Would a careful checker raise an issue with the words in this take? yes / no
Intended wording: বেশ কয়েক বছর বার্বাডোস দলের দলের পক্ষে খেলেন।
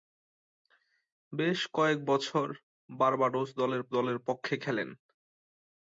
no